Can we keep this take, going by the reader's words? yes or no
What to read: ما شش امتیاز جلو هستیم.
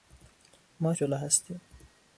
no